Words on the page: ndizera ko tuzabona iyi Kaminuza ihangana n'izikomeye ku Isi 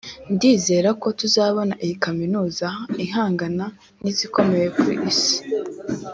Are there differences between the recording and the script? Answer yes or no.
no